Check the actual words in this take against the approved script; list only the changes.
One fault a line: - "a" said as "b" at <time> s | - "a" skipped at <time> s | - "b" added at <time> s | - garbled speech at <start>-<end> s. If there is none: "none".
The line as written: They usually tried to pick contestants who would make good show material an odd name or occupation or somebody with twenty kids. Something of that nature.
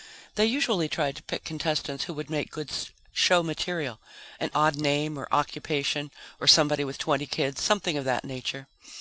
none